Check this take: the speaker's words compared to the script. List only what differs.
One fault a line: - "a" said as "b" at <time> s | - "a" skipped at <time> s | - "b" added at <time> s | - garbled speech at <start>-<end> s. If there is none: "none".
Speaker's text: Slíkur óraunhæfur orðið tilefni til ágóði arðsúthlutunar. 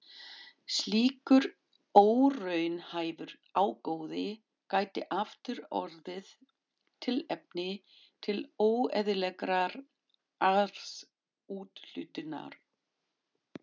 - "ágóði gæti aftur" added at 3.6 s
- "ágóði" said as "óeðlilegrar" at 8.7 s